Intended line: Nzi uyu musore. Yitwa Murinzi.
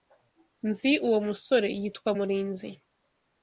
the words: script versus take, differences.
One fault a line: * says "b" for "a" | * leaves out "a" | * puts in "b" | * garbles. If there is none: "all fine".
* says "uwo" for "uyu"